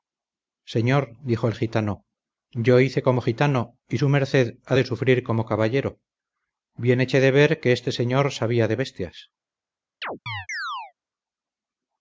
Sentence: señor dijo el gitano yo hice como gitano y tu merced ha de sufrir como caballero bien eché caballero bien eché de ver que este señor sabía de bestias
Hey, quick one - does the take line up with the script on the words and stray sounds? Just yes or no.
no